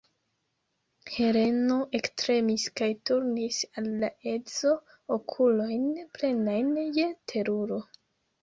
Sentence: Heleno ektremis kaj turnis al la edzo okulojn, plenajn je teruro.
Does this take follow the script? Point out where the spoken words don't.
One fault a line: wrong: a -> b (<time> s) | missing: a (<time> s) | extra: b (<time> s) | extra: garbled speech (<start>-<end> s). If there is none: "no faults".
no faults